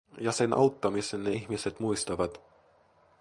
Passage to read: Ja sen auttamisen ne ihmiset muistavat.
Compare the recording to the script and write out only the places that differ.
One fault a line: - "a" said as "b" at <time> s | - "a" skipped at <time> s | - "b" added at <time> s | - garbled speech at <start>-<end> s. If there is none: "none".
none